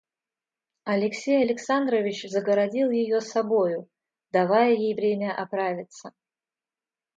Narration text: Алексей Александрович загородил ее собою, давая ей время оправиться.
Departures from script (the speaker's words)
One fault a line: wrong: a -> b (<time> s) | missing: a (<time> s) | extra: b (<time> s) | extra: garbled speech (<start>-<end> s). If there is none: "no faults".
no faults